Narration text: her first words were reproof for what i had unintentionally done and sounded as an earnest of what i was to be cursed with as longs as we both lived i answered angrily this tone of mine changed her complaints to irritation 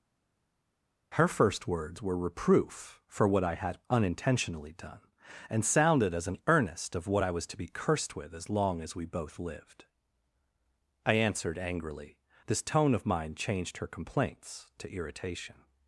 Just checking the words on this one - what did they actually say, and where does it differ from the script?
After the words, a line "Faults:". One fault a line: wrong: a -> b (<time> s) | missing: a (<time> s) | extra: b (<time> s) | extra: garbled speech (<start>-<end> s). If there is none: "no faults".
her first words were reproof for what i had unintentionally done and sounded as an earnest of what i was to be cursed with as long as we both lived i answered angrily this tone of mine changed her complaints to irritation
Faults:
wrong: longs -> long (8.5 s)